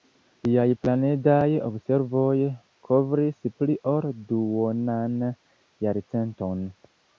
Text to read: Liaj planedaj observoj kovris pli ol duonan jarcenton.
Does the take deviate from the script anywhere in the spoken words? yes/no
no